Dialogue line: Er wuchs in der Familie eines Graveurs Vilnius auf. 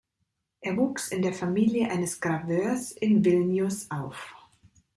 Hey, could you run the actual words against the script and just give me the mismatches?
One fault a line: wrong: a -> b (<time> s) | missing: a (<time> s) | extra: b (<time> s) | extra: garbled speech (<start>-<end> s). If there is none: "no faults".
extra: in (2.9 s)